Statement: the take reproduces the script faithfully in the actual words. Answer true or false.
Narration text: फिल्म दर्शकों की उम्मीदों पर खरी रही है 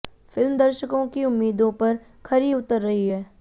false